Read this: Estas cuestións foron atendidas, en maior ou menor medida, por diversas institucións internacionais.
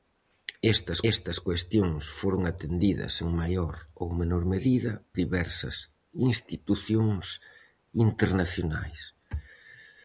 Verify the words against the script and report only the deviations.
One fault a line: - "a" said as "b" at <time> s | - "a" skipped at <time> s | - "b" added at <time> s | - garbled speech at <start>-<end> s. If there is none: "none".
- "estas" added at 1.1 s
- "por" skipped at 4.9 s